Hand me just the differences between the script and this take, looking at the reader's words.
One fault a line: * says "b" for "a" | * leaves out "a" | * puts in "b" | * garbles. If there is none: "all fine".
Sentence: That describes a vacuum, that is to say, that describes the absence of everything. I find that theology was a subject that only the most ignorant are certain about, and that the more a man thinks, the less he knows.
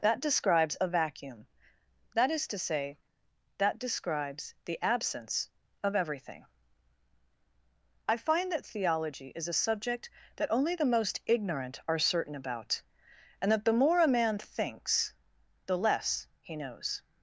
* says "is" for "was"